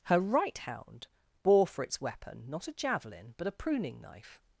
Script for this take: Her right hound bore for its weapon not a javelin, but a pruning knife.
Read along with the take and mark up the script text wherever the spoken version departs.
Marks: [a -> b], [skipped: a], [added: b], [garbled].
Her right hound bore for its weapon not a javelin, but a pruning knife.